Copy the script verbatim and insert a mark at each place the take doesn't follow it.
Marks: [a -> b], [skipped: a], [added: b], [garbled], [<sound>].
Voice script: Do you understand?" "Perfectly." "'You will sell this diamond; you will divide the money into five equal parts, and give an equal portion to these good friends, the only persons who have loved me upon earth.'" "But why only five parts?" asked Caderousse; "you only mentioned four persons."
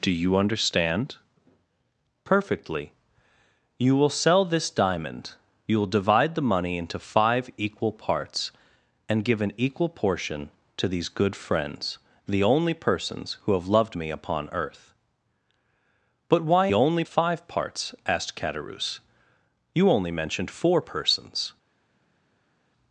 Do you understand?" "Perfectly." "'You will sell this diamond; you will divide the money into five equal parts, and give an equal portion to these good friends, the only persons who have loved me upon earth.'" "But why only five parts?" asked Caderousse; "you only mentioned four persons."